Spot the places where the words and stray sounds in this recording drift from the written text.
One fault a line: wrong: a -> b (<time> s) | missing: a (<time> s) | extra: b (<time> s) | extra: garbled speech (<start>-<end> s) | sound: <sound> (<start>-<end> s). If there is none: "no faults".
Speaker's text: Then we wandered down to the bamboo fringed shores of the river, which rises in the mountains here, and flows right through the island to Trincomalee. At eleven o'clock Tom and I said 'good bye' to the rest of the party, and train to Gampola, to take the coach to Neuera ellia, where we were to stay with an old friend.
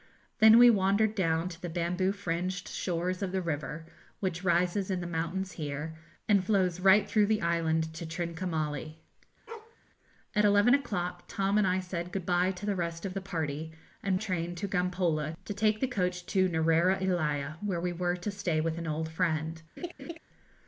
sound: bark (9.5-9.8 s)
sound: laugh (19.8-20.2 s)